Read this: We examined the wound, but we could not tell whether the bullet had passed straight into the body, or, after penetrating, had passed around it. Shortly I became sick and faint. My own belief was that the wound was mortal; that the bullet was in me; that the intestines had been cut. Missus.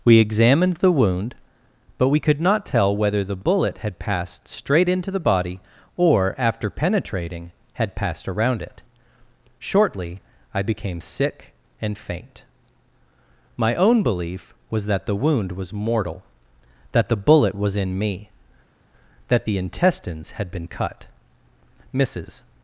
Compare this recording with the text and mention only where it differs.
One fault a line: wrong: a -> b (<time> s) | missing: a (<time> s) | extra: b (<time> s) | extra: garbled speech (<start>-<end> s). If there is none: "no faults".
no faults